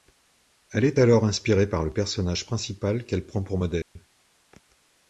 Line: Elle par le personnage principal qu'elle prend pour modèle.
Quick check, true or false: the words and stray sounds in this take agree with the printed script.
false